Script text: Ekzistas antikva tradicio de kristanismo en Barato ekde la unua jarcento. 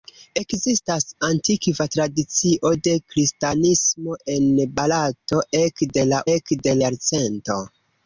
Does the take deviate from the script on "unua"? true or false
true